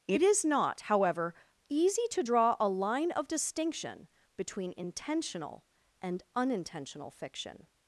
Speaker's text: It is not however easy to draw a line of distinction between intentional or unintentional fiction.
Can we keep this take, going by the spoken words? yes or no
no